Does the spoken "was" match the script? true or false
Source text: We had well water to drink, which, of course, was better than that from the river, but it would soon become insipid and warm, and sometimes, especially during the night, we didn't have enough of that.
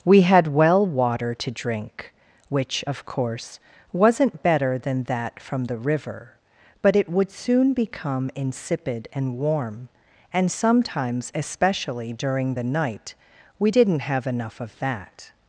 false